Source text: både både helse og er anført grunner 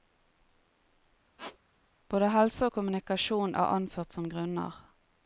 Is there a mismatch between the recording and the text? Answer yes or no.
yes